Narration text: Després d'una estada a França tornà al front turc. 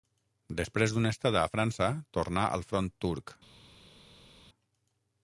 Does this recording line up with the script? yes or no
yes